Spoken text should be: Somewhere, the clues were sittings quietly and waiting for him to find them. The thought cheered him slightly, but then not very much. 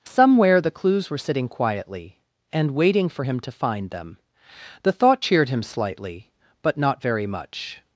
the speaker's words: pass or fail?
fail